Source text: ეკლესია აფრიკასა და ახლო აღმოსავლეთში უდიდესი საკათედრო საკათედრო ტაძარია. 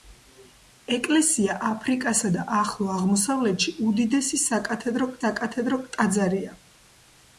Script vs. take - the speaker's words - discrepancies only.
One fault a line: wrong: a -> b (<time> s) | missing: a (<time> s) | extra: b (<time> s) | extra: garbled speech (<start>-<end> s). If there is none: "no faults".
no faults